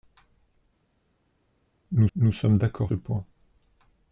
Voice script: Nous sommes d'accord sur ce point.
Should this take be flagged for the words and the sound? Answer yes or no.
yes